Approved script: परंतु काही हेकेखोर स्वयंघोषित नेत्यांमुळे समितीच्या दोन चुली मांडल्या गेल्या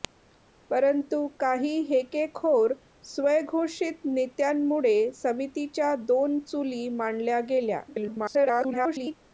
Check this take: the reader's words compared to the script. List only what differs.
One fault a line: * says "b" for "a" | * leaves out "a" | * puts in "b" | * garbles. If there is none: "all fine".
* garbles